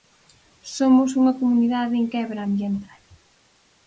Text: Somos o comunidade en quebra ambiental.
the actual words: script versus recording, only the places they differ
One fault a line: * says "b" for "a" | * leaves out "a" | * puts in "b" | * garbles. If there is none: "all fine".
* says "unha" for "o"